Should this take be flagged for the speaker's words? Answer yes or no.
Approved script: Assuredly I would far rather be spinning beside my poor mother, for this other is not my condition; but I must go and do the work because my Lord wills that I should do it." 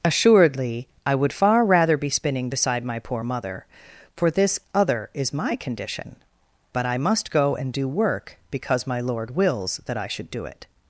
yes